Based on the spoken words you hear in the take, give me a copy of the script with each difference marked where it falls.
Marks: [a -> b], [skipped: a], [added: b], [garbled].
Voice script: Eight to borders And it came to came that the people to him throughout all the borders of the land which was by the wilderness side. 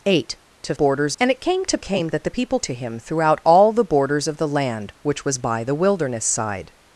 Eight to borders And it came to came that the people to him throughout all the borders of the land which was by the wilderness side.